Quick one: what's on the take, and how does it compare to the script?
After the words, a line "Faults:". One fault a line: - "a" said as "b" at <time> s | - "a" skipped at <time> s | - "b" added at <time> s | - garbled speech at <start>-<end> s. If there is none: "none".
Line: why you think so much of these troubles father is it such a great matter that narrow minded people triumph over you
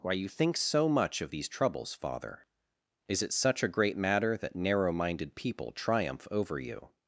why you think so much of these troubles father is it such a great matter that narrow minded people triumph over you
Faults:
none